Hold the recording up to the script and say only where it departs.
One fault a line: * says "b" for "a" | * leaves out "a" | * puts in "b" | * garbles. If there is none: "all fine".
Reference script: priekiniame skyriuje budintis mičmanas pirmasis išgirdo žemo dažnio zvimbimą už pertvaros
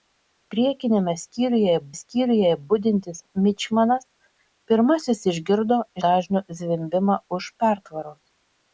* puts in "skyriuje"
* leaves out "žemo"